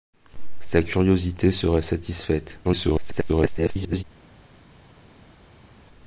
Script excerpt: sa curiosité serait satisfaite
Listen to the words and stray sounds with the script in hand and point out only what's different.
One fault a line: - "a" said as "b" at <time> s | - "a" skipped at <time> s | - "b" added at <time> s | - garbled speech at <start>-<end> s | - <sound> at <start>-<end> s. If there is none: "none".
- garbled speech at 2.6-4.0 s